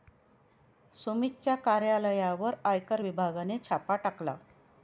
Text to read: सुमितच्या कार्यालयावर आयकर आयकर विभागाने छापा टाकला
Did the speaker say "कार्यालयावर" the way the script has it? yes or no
yes